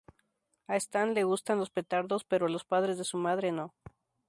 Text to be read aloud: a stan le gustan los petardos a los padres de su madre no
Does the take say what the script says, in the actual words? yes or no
no